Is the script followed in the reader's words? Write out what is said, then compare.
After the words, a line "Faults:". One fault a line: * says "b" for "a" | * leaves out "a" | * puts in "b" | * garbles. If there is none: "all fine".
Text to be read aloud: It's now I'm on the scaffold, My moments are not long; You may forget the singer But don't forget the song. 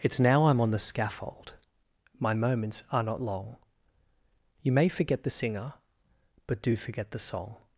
It's now I'm on the scaffold, My moments are not long; You may forget the singer But do forget the song.
Faults:
* says "do" for "don't"